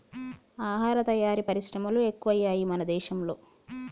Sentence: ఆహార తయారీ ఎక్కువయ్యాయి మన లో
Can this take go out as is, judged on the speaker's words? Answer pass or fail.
fail